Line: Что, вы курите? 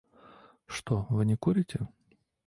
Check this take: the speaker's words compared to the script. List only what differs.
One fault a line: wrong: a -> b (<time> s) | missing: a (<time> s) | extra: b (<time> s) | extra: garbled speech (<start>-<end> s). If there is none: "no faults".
extra: не (1.2 s)